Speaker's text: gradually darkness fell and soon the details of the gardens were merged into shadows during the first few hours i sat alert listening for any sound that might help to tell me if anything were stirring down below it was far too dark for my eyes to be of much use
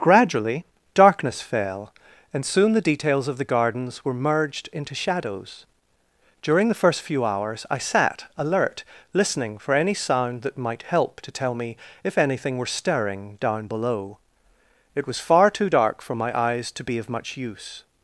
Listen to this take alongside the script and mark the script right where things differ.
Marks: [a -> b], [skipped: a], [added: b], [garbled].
gradually darkness fell and soon the details of the gardens were merged into shadows during the first few hours i sat alert listening for any sound that might help to tell me if anything were stirring down below it was far too dark for my eyes to be of much use